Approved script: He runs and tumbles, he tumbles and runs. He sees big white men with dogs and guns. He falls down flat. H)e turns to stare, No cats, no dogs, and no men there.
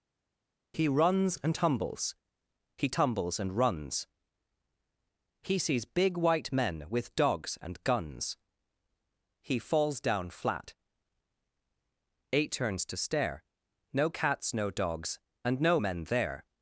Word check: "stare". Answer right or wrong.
right